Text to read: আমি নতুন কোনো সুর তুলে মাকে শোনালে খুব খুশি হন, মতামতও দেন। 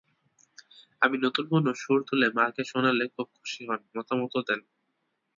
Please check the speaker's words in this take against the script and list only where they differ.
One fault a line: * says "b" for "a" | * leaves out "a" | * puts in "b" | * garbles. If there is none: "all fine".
all fine